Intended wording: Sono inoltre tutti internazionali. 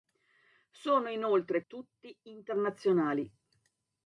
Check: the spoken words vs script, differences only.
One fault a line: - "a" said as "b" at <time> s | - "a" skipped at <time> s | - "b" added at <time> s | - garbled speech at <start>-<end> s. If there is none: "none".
none